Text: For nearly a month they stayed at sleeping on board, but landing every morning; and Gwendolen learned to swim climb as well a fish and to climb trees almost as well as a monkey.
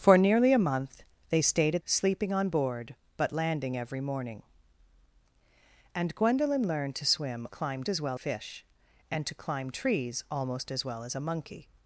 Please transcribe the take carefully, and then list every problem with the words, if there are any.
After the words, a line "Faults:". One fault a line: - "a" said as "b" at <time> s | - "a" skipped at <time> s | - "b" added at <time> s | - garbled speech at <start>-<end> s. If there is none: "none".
For nearly a month they stayed at sleeping on board, but landing every morning; and Gwendolen learned to swim climb as well a fish and to climb trees almost as well as a monkey.
Faults:
none